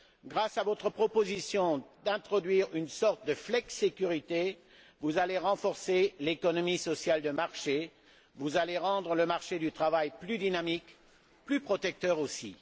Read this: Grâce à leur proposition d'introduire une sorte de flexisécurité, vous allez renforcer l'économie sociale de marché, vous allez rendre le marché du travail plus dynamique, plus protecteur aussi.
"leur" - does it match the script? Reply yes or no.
no